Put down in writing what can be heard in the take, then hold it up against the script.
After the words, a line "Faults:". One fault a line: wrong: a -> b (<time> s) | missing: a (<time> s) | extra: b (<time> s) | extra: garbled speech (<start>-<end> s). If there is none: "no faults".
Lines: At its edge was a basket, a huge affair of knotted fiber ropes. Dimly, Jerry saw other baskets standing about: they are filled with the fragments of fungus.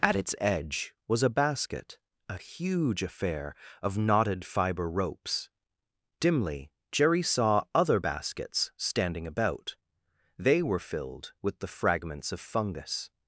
At its edge was a basket, a huge affair of knotted fiber ropes. Dimly, Jerry saw other baskets standing about: they were filled with the fragments of fungus.
Faults:
wrong: are -> were (10.6 s)